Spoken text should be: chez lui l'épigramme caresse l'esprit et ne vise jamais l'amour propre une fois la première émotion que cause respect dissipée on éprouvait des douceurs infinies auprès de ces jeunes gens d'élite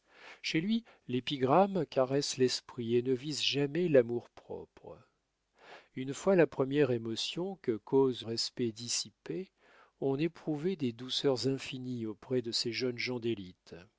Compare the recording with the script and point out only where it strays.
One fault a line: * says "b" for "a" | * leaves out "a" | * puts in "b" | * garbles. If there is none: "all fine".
all fine